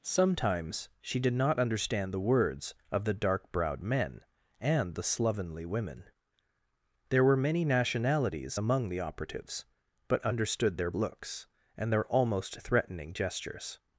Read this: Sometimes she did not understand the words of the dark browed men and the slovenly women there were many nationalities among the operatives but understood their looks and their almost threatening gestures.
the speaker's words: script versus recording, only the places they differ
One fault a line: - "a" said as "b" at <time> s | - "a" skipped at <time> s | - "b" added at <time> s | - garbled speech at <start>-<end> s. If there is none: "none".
none